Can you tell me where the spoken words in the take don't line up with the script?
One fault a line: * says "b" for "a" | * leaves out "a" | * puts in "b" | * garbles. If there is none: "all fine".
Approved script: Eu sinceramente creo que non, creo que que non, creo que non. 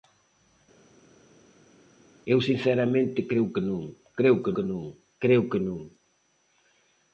all fine